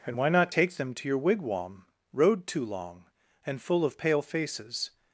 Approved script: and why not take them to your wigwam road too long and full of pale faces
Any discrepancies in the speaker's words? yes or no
no